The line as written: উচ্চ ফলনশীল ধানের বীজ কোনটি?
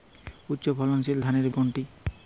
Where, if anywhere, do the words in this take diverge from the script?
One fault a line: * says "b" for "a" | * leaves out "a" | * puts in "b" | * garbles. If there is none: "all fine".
* leaves out "বীজ"